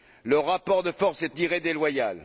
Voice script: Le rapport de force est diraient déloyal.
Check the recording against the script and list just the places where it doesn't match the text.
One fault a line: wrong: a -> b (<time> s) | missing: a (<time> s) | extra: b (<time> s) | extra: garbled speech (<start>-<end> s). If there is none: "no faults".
no faults